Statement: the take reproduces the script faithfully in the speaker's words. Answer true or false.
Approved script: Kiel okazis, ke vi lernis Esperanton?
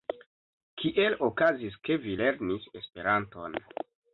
true